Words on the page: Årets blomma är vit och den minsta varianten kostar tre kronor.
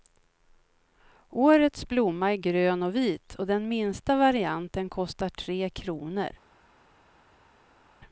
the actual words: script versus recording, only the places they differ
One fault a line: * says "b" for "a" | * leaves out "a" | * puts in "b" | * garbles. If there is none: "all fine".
* puts in "grön och"